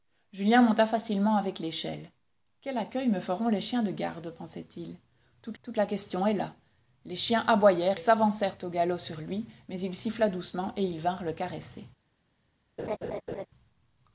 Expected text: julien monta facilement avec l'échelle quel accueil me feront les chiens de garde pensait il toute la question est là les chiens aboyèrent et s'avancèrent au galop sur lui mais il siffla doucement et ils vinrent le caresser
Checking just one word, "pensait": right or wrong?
right